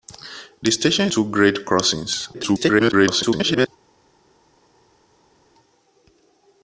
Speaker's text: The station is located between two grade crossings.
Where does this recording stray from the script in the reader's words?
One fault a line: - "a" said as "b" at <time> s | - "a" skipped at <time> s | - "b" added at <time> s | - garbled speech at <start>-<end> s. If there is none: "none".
- "is located between" skipped at 1.1 s
- garbled speech at 2.3-3.7 s